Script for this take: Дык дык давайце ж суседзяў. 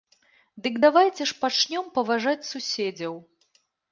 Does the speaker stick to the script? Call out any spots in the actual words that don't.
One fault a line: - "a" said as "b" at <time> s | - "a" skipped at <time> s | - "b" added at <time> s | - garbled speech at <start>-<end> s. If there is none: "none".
- "дык" skipped at 0.8 s
- "пачнём паважаць" added at 1.4 s